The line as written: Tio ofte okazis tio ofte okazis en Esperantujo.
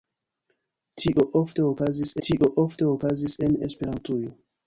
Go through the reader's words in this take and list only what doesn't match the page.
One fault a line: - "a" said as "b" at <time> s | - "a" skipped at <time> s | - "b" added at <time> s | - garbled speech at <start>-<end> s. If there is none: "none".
none